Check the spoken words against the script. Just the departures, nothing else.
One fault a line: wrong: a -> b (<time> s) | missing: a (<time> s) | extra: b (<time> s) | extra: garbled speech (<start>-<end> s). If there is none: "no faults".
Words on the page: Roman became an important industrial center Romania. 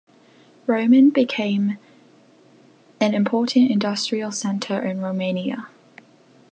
extra: in (4.8 s)